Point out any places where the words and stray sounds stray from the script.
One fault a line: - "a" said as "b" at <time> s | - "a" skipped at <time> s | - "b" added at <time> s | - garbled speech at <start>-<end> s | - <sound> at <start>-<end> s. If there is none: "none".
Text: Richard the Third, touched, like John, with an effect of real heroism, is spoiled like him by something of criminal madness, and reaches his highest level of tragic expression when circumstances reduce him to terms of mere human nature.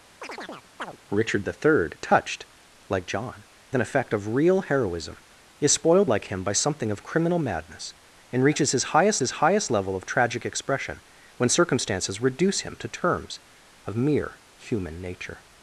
- chirp at 0.2-1.0 s
- "with" skipped at 3.4 s
- "his highest" added at 9.2 s